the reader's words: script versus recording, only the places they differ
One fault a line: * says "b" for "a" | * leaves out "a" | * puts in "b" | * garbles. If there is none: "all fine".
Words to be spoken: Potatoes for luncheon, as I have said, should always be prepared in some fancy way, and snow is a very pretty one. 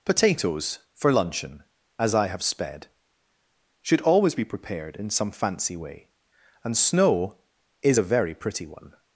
* says "sped" for "said"